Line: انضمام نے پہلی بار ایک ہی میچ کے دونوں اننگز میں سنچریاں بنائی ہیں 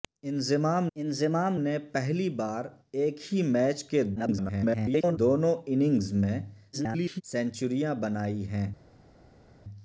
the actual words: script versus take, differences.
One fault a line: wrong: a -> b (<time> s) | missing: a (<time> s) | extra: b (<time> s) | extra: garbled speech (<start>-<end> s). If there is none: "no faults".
extra: انضمام (1.0 s)
extra: garbled speech (4.2-5.2 s)
extra: garbled speech (6.7-7.2 s)